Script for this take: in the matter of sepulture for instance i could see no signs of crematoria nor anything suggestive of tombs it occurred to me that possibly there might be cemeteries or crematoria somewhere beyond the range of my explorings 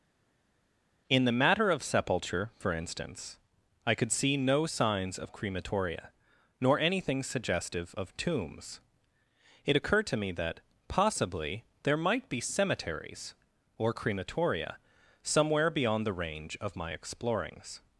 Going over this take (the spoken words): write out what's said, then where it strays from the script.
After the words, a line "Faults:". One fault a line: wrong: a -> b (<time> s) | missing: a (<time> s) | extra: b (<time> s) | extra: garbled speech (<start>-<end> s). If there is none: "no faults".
in the matter of sepulture for instance i could see no signs of crematoria nor anything suggestive of tombs it occurred to me that possibly there might be cemeteries or crematoria somewhere beyond the range of my explorings
Faults:
no faults